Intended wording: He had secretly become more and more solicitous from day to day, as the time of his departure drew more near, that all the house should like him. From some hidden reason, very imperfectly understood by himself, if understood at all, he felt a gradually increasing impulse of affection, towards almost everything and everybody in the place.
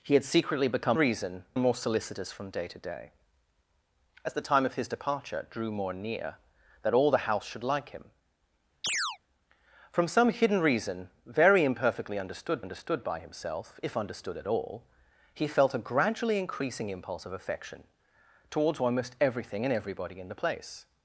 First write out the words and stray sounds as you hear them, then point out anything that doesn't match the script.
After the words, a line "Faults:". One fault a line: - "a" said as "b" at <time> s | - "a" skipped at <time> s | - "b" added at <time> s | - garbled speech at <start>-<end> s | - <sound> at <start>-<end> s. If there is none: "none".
He had secretly become reason and more solicitous from day to day, as the time of his departure drew more near, that all the house should like him. From some hidden reason, very imperfectly understood understood by himself, if understood at all, he felt a gradually increasing impulse of affection, towards almost everything and everybody in the place.
Faults:
- "more" said as "reason" at 0.9 s
- chirp at 8.8-9.2 s
- "understood" added at 12.6 s